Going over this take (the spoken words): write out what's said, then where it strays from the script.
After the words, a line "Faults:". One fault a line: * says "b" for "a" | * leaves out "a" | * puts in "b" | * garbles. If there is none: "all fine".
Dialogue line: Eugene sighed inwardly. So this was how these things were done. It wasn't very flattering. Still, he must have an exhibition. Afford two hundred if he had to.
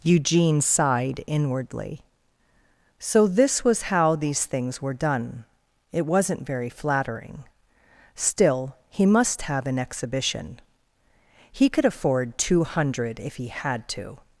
Eugene sighed inwardly. So this was how these things were done. It wasn't very flattering. Still, he must have an exhibition. He could afford two hundred if he had to.
Faults:
* puts in "He could"